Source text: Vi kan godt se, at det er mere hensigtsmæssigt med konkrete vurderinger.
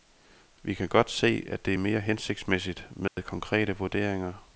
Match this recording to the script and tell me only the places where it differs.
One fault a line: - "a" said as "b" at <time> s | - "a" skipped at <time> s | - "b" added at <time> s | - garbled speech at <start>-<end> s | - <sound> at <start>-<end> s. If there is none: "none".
- dropout at 3.1-3.2 s